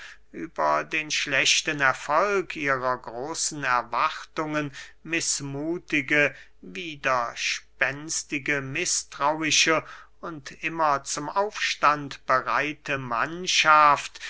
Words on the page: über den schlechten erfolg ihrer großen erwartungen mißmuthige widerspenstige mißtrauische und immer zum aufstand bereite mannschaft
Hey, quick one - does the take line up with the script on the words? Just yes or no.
yes